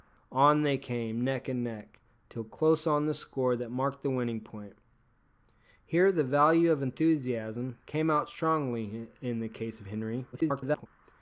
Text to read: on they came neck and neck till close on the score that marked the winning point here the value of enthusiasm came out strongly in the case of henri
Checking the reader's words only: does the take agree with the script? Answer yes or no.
no